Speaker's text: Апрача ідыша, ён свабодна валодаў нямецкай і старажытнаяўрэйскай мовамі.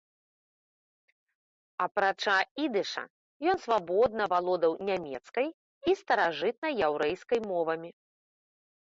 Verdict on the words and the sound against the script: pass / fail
pass